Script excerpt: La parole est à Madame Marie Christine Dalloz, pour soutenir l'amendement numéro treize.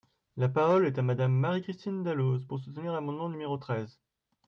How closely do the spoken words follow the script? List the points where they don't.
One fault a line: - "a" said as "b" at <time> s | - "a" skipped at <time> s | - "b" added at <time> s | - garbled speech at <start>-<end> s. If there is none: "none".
none